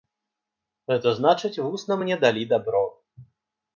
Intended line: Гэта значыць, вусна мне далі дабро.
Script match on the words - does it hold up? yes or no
yes